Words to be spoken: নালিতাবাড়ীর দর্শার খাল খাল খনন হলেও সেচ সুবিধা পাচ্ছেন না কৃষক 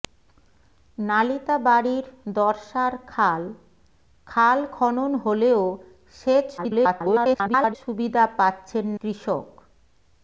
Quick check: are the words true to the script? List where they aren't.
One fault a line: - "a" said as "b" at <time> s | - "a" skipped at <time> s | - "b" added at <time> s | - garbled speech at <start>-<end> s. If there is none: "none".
- garbled speech at 6.6-7.8 s
- "না" skipped at 8.9 s